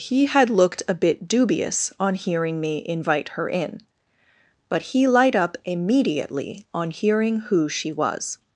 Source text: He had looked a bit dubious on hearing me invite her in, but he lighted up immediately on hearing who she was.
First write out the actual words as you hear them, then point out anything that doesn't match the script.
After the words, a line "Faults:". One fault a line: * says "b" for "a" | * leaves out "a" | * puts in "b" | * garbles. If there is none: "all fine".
He had looked a bit dubious on hearing me invite her in, but he light up immediately on hearing who she was.
Faults:
* says "light" for "lighted"